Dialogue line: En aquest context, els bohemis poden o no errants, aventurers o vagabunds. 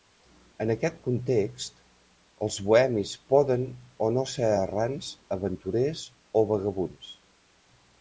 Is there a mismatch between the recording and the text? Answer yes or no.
yes